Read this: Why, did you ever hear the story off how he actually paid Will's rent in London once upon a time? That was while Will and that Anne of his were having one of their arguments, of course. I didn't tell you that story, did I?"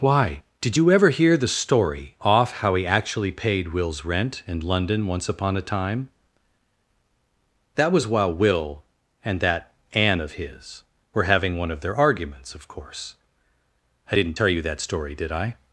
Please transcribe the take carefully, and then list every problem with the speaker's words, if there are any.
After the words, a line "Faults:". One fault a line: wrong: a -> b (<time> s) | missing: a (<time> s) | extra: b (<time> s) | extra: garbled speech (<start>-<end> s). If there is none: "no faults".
Why, did you ever hear the story off how he actually paid Will's rent in London once upon a time? That was while Will and that Anne of his were having one of their arguments, of course. I didn't tell you that story, did I?"
Faults:
no faults